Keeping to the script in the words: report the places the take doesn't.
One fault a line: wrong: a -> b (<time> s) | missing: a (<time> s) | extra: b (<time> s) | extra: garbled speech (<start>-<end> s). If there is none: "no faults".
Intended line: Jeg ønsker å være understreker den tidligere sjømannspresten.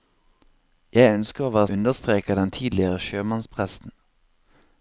no faults